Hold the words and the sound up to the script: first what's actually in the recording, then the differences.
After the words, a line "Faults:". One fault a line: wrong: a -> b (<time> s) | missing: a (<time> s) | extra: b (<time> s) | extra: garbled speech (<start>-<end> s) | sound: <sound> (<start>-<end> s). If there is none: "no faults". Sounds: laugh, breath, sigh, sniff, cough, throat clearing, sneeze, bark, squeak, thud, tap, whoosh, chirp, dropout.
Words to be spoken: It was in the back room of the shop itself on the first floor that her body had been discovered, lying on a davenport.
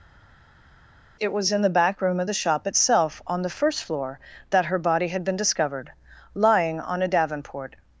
It was in the back room of the shop itself on the first floor that her body had been discovered, lying on a davenport.
Faults:
no faults